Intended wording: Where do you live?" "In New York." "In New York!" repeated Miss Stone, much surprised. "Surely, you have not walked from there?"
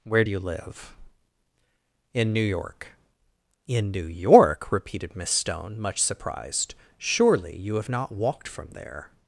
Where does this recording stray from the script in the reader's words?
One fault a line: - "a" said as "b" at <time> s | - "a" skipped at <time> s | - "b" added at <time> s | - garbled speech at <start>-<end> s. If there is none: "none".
none